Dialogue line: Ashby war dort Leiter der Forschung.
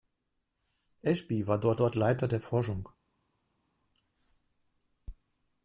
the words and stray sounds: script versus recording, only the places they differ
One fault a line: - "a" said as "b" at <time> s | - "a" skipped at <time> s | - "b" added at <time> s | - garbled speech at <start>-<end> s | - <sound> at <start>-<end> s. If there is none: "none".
- "dort" added at 1.7 s